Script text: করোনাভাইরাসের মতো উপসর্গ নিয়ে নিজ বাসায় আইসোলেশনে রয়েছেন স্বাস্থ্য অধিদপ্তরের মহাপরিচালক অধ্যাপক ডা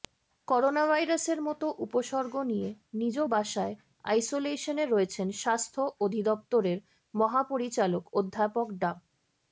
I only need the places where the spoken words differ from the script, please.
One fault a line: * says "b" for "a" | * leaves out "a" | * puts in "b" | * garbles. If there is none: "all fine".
all fine